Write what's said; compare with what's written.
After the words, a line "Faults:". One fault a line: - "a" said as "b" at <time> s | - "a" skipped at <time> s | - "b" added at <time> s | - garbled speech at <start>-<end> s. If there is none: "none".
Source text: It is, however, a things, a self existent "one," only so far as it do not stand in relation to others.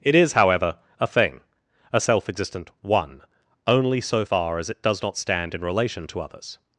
It is, however, a thing, a self existent "one," only so far as it does not stand in relation to others.
Faults:
- "things" said as "thing" at 1.1 s
- "do" said as "does" at 4.8 s